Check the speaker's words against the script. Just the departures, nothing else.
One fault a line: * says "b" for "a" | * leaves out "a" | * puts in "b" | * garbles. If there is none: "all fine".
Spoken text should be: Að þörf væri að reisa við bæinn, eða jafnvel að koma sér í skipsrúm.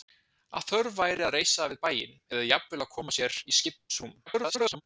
* garbles